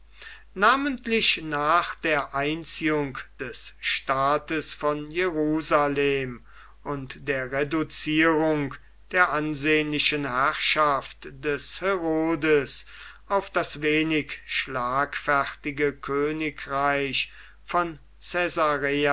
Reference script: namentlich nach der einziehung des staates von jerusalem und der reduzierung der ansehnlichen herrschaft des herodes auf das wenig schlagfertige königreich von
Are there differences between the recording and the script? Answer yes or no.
no